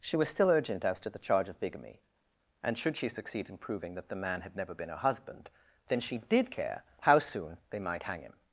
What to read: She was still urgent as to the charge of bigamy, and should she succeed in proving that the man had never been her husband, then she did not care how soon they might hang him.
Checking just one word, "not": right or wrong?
wrong